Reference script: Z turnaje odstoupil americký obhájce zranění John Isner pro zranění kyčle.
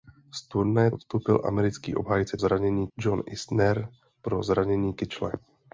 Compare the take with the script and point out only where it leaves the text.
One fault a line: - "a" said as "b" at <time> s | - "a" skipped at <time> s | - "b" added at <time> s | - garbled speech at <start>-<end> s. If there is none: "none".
none